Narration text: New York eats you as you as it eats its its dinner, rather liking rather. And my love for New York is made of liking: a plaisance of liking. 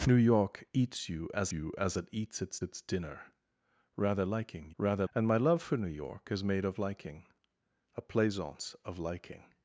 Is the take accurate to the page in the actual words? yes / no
yes